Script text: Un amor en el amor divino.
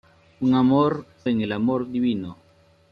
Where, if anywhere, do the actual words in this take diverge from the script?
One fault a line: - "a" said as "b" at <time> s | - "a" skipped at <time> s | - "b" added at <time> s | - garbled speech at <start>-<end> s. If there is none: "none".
none